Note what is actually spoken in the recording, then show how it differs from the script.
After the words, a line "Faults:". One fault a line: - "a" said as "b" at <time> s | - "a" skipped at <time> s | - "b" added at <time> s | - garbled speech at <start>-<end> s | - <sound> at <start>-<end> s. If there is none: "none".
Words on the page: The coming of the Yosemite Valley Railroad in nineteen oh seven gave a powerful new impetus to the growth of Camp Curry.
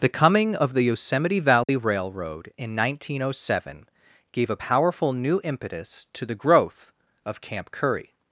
The coming of the Yosemite Valley Railroad in nineteen oh seven gave a powerful new impetus to the growth of Camp Curry.
Faults:
- dropout at 1.6-1.7 s